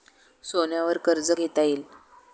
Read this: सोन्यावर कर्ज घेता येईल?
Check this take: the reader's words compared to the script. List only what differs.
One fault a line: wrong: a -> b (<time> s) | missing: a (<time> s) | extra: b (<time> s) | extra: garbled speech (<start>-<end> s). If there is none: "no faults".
no faults